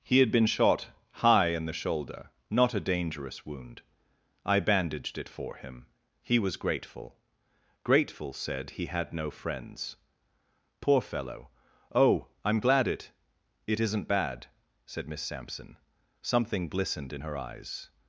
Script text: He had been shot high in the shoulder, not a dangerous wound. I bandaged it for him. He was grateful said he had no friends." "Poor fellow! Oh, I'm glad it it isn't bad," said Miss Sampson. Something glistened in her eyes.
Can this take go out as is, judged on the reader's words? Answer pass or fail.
fail